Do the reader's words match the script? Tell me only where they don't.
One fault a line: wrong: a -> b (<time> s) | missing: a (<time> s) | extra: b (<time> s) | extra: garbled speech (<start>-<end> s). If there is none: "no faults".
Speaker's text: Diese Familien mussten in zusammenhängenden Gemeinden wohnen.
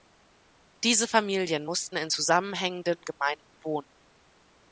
no faults